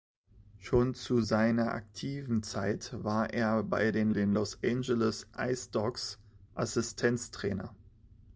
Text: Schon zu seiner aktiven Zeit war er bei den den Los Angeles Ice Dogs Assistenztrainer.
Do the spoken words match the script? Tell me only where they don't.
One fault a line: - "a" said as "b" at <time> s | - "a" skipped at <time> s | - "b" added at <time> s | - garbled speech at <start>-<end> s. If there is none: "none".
none